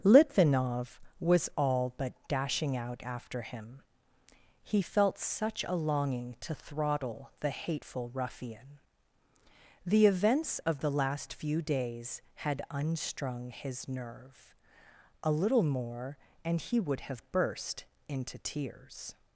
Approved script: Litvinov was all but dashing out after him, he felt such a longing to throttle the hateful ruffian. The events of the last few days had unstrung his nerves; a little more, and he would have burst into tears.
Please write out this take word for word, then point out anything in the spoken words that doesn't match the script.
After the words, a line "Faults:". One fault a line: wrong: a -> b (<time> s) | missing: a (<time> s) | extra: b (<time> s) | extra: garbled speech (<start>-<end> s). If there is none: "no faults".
Litvinov was all but dashing out after him, he felt such a longing to throttle the hateful ruffian. The events of the last few days had unstrung his nerve; a little more, and he would have burst into tears.
Faults:
wrong: nerves -> nerve (13.9 s)